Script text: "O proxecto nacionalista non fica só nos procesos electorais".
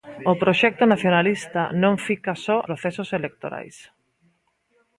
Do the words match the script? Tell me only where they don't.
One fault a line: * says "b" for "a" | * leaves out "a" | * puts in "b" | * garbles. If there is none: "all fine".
* leaves out "nos"